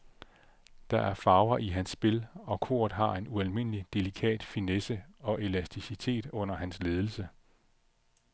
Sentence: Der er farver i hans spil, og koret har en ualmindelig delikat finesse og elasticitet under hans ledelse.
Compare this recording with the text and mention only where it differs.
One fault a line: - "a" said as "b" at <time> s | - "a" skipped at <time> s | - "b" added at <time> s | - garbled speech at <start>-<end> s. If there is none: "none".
none